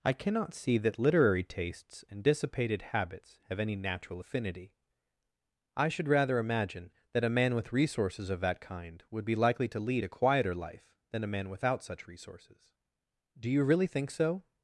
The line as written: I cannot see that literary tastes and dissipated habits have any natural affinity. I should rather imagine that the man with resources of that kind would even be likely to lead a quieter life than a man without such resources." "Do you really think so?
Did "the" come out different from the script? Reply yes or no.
yes